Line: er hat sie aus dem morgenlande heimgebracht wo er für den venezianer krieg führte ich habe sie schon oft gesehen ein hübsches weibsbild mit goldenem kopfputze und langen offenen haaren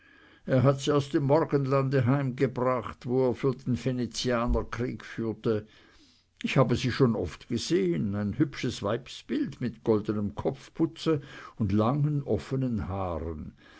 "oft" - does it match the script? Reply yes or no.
yes